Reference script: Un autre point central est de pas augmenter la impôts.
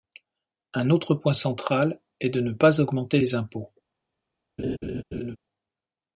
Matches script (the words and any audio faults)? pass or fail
fail